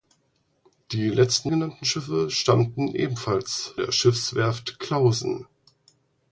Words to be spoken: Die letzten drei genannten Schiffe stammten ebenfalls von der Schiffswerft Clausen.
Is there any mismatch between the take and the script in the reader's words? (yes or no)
yes